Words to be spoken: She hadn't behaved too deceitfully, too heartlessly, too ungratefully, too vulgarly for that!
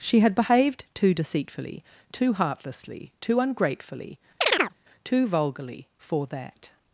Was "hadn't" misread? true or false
true